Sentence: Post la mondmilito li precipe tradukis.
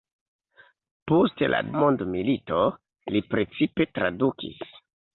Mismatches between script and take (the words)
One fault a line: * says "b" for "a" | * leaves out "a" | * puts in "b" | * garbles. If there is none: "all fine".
all fine